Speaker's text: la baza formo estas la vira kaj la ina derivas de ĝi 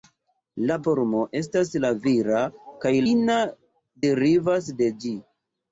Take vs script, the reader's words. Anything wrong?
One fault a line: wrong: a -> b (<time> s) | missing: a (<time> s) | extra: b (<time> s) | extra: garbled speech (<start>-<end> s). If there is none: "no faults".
missing: baza (0.8 s)
missing: la (3.0 s)